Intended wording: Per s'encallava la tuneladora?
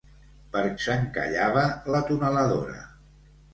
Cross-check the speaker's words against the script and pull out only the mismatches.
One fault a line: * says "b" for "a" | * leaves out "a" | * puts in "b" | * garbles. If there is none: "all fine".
all fine